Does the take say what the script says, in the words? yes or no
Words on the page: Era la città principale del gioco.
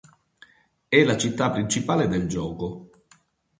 no